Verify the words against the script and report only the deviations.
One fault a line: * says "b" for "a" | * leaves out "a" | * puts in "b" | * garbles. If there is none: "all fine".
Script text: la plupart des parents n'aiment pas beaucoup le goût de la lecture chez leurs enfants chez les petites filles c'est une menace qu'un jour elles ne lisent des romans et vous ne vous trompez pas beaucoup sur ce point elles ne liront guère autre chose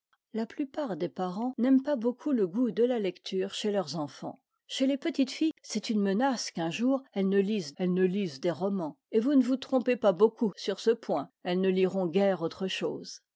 * puts in "elles ne lisent"